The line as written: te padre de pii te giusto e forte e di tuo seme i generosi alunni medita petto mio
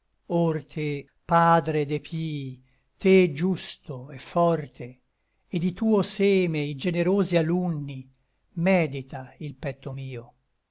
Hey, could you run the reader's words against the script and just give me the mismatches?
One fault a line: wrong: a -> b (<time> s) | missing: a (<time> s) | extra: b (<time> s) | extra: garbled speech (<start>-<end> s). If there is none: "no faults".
extra: il (9.4 s)